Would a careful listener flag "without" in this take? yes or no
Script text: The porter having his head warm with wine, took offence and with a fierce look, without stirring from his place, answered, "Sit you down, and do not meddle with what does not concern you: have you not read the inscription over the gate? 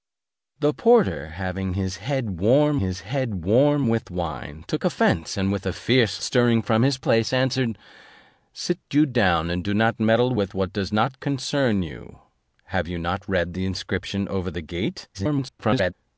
yes